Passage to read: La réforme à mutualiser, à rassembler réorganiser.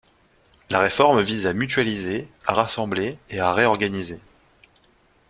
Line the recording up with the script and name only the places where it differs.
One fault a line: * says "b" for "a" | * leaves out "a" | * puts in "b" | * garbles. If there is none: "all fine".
* puts in "vise"
* puts in "et à"